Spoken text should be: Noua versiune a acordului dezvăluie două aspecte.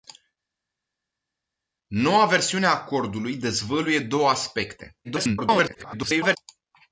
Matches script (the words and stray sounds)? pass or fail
fail